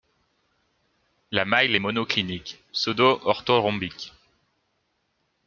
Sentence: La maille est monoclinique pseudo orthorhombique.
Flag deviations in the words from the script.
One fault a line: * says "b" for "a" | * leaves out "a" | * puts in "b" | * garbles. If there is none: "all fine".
all fine